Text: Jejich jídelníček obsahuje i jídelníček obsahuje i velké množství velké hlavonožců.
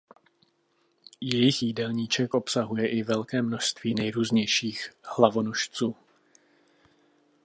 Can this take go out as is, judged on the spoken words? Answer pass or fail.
fail